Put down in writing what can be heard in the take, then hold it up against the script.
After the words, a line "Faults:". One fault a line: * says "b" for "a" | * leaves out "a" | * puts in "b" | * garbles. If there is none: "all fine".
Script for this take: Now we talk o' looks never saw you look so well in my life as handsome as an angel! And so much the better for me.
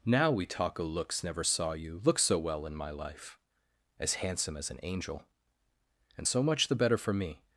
Now we talk o' looks never saw you look so well in my life as handsome as an angel! And so much the better for me.
Faults:
all fine